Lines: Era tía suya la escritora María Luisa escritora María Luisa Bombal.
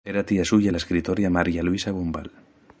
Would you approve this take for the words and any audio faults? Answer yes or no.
no